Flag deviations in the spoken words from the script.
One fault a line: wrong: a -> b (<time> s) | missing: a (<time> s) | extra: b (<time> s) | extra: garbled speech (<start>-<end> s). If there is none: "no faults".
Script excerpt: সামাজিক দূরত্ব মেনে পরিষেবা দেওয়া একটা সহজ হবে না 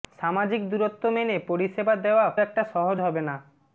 no faults